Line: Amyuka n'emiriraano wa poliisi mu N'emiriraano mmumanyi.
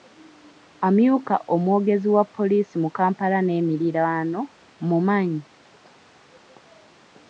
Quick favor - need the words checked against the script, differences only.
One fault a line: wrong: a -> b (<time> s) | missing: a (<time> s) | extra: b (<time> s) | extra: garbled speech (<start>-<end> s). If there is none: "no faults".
wrong: n'emiriraano -> omwogezi (1.5 s)
extra: Kampala (3.0 s)